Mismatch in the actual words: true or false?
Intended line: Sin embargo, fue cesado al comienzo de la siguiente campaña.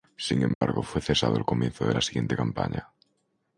false